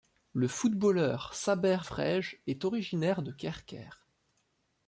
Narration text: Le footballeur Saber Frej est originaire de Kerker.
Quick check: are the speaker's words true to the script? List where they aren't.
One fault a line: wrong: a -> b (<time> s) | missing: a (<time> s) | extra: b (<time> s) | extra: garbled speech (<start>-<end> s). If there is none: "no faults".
no faults